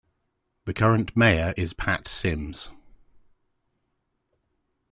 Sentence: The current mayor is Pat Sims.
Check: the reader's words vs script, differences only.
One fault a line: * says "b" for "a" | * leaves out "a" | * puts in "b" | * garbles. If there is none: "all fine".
all fine